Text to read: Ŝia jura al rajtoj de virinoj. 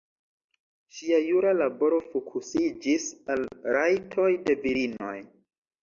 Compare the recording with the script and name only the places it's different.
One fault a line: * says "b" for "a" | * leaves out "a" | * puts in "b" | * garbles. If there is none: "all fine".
* puts in "laboro fokusiĝis"